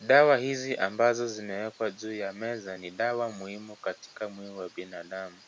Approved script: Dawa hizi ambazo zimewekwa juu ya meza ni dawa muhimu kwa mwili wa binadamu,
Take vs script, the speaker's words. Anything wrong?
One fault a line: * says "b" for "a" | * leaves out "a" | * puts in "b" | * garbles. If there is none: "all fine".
* says "katika" for "kwa"